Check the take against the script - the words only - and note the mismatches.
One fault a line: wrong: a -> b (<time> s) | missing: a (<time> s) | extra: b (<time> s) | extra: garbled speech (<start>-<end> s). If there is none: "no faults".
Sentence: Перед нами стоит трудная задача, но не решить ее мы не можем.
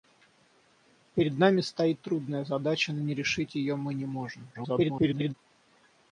extra: garbled speech (4.5-5.3 s)